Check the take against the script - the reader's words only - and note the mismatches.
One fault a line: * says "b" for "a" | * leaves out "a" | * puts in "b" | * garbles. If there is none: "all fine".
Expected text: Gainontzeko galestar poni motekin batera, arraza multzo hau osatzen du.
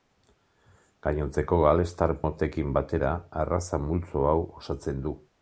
* leaves out "poni"